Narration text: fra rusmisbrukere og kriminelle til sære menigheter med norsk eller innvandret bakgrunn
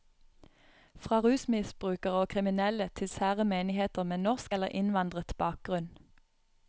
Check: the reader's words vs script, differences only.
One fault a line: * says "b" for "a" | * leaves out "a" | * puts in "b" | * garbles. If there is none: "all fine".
all fine